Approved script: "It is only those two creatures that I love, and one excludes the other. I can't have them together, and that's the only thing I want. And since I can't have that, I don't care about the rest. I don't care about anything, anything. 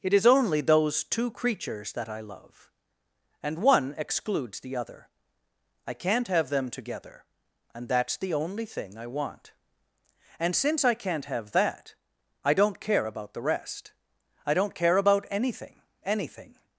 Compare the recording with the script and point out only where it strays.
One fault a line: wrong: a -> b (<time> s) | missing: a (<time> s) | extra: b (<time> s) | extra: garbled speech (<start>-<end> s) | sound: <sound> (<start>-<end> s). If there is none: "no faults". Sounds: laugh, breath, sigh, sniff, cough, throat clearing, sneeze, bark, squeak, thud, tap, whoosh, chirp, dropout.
no faults